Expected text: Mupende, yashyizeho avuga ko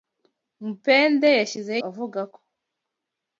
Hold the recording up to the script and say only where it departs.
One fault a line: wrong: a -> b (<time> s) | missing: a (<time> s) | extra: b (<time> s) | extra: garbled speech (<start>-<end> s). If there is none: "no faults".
no faults